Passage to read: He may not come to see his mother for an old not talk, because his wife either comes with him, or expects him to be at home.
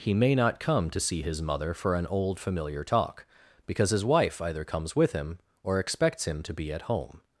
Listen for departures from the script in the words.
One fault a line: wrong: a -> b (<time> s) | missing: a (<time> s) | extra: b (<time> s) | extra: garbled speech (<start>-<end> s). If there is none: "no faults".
wrong: not -> familiar (2.4 s)